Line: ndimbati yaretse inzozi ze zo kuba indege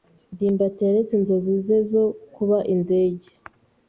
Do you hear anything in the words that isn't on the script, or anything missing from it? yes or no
no